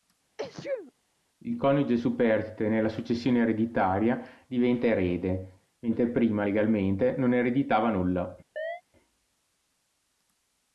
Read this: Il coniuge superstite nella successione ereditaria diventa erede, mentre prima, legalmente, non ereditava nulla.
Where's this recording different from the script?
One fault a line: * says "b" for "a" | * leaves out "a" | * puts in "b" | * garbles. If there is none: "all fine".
all fine